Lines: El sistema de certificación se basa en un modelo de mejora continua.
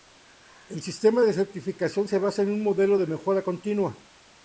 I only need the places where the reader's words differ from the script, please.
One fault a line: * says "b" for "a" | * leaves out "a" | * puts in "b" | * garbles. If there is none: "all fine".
all fine